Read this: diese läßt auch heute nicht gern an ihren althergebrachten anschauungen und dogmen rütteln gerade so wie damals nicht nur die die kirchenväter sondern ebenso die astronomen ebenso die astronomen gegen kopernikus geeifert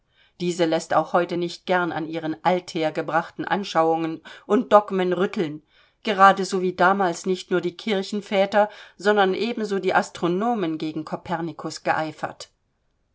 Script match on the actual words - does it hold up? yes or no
no